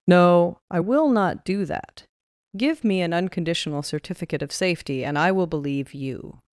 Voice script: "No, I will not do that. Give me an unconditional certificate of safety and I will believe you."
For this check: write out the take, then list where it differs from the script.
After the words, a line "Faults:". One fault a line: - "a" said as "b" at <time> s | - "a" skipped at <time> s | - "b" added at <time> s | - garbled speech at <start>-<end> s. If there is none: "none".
"No, I will not do that. Give me an unconditional certificate of safety and I will believe you."
Faults:
none